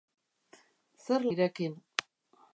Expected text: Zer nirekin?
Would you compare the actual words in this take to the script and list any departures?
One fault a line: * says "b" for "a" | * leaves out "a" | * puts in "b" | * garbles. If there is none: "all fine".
all fine